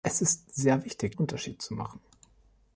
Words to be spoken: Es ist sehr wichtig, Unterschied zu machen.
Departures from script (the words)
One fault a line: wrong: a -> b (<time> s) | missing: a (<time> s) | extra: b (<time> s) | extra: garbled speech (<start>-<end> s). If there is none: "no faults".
no faults